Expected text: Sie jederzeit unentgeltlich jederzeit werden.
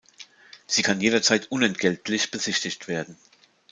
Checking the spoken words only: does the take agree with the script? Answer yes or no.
no